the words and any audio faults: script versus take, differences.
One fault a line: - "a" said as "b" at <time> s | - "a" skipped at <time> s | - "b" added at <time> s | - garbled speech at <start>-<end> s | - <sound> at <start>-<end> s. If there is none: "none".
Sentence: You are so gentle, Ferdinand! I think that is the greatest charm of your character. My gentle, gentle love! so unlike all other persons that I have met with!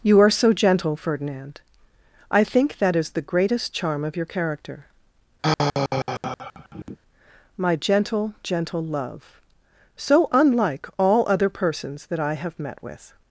- sigh at 5.4-7.0 s